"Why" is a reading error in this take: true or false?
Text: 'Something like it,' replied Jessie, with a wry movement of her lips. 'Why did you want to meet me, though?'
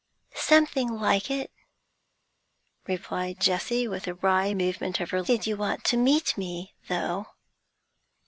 true